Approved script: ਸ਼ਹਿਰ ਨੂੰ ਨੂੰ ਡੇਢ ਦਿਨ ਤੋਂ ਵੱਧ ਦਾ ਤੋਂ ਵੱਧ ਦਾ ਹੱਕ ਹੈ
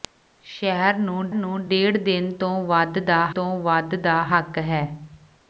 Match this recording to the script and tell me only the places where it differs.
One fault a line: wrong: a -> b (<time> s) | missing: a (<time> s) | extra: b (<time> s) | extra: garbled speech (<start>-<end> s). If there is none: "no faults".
no faults